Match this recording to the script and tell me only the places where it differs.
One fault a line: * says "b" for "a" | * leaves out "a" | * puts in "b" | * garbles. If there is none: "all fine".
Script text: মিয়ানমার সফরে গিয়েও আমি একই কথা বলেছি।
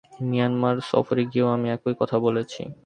all fine